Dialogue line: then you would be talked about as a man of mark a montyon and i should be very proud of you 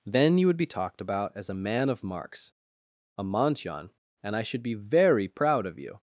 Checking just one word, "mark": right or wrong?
wrong